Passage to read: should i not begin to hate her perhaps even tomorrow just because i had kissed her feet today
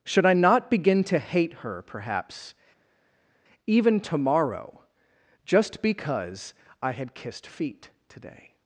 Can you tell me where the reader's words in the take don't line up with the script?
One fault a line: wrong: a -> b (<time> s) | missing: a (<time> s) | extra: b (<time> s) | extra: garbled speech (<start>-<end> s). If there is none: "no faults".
missing: her (7.5 s)